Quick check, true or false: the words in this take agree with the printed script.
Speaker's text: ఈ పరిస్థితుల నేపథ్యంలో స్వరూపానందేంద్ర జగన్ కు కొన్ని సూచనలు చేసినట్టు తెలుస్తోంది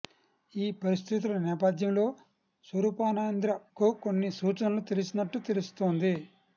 false